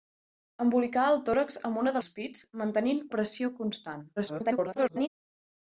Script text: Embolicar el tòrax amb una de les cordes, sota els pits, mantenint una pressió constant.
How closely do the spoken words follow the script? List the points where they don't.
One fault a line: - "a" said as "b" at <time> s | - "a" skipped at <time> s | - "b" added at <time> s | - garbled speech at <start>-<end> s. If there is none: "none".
- "les cordes sota" skipped at 2.0 s
- "una" skipped at 3.0 s
- garbled speech at 4.2-5.1 s